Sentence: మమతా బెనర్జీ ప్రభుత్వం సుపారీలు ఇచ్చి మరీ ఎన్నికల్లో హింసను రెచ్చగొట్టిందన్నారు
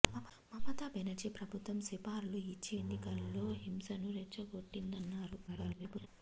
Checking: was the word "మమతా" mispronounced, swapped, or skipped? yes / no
no